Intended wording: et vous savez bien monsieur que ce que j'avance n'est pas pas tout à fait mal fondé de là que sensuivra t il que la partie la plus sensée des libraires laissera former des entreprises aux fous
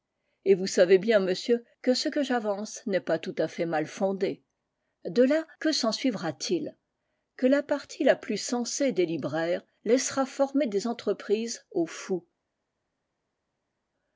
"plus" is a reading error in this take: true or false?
false